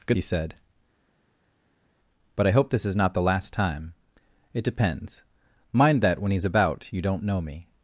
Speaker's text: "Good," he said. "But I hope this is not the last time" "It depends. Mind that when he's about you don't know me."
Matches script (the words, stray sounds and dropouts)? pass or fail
pass